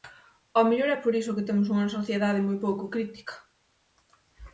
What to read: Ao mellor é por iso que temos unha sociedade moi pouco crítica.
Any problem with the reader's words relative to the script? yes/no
no